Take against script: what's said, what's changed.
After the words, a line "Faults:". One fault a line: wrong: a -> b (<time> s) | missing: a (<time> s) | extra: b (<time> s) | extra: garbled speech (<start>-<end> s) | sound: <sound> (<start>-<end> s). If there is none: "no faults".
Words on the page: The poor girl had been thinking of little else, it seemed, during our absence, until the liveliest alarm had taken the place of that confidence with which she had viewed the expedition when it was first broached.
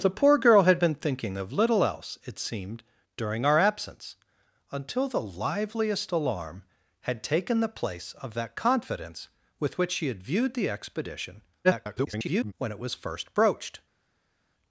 The poor girl had been thinking of little else, it seemed, during our absence, until the liveliest alarm had taken the place of that confidence with which she had viewed the expedition [garbled] when it was first broached.
Faults:
extra: garbled speech (11.6-12.5 s)